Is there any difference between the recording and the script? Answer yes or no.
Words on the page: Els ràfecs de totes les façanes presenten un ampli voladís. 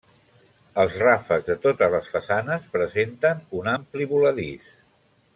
no